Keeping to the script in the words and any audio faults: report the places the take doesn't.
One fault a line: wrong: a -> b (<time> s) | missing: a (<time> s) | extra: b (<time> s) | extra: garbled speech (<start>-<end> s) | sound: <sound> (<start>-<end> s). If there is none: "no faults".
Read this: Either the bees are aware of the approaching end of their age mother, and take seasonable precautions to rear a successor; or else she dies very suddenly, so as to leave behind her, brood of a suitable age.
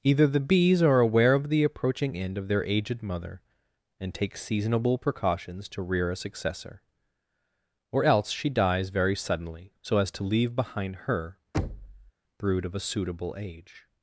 wrong: age -> aged (2.6 s)
sound: thud (11.5-12.1 s)